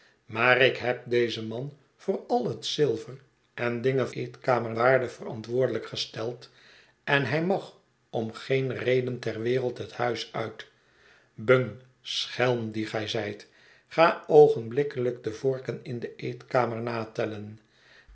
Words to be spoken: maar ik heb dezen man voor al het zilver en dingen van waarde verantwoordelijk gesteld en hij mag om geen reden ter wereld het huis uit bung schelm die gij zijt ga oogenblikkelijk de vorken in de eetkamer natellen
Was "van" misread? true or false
true